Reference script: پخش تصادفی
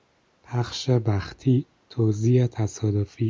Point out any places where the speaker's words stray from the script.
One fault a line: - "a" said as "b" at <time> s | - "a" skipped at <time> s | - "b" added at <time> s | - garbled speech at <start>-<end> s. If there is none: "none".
- "بختی توزیع" added at 0.9 s